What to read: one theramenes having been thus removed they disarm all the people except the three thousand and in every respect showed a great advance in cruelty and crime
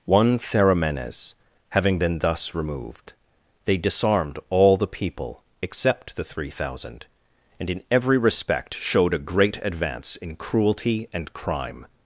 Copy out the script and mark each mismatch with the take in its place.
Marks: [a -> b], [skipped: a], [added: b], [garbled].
one theramenes having been thus removed they [disarm -> disarmed] all the people except the three thousand and in every respect showed a great advance in cruelty and crime